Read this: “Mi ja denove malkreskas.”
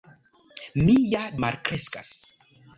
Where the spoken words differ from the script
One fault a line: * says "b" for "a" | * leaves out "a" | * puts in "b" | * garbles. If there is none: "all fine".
* leaves out "denove"